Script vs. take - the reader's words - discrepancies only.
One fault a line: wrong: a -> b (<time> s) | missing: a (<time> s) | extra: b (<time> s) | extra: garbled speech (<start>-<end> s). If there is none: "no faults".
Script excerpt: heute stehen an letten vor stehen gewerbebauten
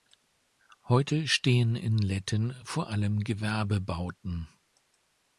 wrong: an -> in (1.8 s)
wrong: stehen -> allem (2.9 s)